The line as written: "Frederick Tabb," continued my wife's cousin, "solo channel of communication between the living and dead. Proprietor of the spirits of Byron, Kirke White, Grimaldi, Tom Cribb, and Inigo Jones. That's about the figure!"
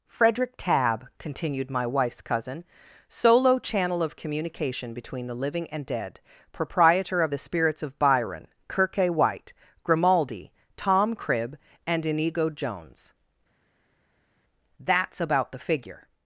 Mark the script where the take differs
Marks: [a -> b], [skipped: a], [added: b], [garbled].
"Frederick Tabb," continued my wife's cousin, "solo channel of communication between the living and dead. Proprietor of the spirits of Byron, Kirke White, Grimaldi, Tom Cribb, and Inigo Jones. That's about the figure!"